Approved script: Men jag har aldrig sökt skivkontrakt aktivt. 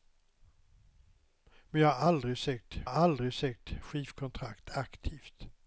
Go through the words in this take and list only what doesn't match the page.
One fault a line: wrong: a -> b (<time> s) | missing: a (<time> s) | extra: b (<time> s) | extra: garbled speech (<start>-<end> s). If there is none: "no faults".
extra: har aldrig sökt (2.8 s)